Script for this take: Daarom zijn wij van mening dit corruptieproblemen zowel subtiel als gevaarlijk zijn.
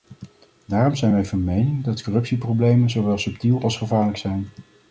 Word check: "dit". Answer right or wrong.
wrong